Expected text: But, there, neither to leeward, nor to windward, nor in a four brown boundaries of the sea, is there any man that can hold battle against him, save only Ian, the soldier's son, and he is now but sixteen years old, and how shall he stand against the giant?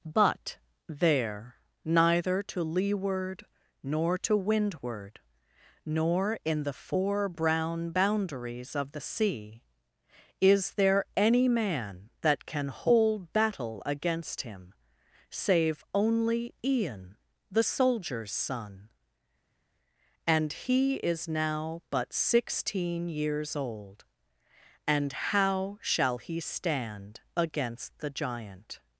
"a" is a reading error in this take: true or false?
true